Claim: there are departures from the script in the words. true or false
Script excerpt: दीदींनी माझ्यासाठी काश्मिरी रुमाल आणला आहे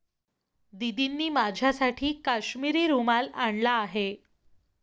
false